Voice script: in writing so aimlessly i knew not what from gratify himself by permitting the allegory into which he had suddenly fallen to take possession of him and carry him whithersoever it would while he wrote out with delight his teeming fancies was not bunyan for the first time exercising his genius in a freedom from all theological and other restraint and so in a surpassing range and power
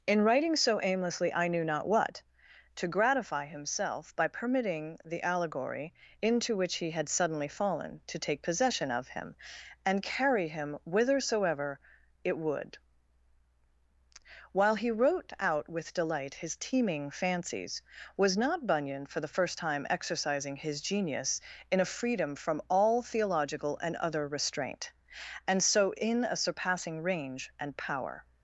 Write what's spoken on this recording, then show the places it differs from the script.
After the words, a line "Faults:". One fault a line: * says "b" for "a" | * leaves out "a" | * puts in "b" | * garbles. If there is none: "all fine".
in writing so aimlessly i knew not what to gratify himself by permitting the allegory into which he had suddenly fallen to take possession of him and carry him whithersoever it would while he wrote out with delight his teeming fancies was not bunyan for the first time exercising his genius in a freedom from all theological and other restraint and so in a surpassing range and power
Faults:
* says "to" for "from"